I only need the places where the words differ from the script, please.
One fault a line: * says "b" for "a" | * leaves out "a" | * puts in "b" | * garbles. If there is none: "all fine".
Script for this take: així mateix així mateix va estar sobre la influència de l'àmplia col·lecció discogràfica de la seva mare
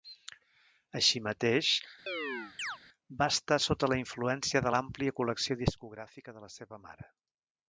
* leaves out "així mateix"
* says "sota" for "sobre"